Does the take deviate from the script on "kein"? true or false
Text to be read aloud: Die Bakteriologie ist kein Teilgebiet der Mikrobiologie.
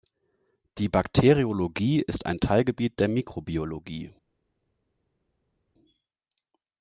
true